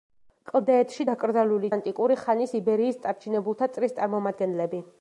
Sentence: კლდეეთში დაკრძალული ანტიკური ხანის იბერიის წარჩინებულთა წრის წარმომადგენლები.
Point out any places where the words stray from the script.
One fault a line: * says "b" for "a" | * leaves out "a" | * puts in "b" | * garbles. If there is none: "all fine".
all fine